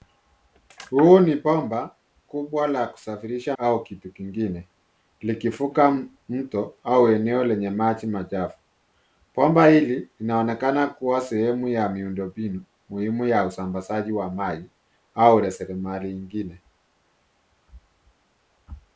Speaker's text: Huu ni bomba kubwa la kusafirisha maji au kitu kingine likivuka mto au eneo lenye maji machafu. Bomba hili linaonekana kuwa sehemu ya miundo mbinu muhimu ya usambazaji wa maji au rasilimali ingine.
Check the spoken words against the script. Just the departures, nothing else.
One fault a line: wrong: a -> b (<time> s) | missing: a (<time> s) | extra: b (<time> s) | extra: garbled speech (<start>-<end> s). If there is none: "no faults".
missing: maji (3.6 s)